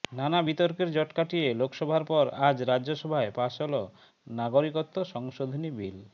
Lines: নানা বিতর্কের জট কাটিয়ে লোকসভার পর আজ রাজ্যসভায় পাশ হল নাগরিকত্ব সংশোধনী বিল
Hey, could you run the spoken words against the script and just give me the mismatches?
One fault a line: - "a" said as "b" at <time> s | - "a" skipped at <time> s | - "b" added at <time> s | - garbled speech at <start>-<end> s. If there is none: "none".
none